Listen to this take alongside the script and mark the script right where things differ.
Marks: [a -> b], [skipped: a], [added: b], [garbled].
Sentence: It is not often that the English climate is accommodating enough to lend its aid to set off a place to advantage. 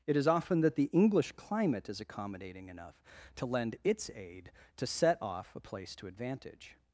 It is [skipped: not] often that the English climate is accommodating enough to lend its aid to set off a place to advantage.